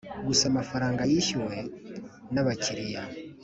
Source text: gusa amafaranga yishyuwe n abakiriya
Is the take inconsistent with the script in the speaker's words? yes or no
no